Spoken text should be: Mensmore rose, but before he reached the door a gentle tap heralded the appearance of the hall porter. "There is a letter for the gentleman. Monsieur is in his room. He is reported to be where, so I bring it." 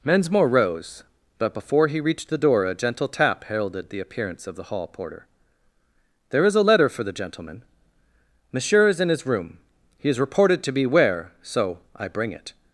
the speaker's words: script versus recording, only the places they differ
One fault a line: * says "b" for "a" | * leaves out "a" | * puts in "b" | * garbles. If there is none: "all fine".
all fine